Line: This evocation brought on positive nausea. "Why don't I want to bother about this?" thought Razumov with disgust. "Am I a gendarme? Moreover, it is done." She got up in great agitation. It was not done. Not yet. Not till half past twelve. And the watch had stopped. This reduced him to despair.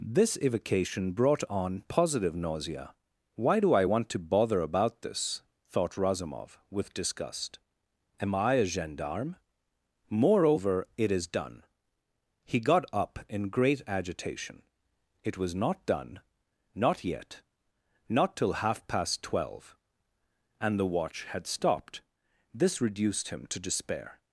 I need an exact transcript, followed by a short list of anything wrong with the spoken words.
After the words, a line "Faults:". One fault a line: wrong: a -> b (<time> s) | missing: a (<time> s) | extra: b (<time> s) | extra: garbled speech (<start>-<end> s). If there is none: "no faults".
This evocation brought on positive nausea. "Why do I want to bother about this?" thought Razumov with disgust. "Am I a gendarme? Moreover, it is done." He got up in great agitation. It was not done. Not yet. Not till half past twelve. And the watch had stopped. This reduced him to despair.
Faults:
wrong: don't -> do (3.6 s)
wrong: She -> He (12.4 s)